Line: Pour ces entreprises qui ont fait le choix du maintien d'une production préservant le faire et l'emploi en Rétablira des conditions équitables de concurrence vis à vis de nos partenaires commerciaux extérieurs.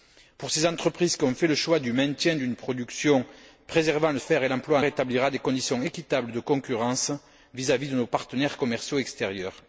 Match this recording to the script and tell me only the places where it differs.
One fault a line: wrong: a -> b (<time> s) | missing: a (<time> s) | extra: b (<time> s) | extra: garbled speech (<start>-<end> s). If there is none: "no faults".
no faults